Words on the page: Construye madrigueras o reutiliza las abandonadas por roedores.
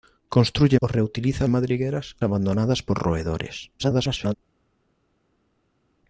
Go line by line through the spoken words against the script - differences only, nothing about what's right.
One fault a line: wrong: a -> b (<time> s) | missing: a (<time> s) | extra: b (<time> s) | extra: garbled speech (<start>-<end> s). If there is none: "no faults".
missing: madrigueras (0.8 s)
wrong: las -> madrigueras (1.5 s)
extra: garbled speech (3.8-4.3 s)